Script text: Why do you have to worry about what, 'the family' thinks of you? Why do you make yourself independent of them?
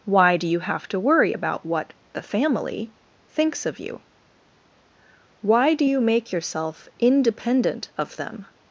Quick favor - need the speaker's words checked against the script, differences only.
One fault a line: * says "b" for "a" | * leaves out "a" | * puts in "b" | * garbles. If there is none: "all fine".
all fine